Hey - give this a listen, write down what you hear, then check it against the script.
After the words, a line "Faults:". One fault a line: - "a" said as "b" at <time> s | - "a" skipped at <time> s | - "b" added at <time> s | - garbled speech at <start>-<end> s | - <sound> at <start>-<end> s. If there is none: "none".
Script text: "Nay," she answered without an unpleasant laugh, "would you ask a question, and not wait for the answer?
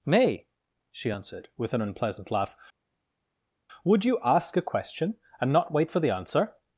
"Nay," she answered with an unpleasant laugh, "would you ask a question, and not wait for the answer?
Faults:
- "without" said as "with" at 1.6 s